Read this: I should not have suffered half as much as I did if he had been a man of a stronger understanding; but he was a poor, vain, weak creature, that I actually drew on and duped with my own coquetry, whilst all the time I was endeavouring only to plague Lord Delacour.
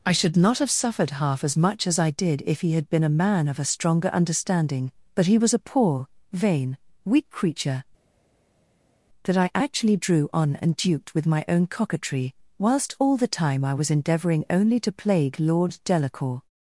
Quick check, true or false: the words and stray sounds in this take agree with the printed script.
true